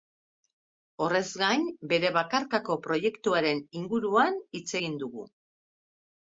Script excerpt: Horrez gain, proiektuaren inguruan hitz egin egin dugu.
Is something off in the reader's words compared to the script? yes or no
yes